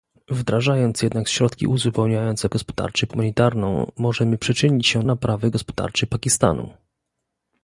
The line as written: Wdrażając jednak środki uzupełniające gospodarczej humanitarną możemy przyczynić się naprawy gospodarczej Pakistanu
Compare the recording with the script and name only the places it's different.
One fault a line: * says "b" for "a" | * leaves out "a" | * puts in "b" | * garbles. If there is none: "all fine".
all fine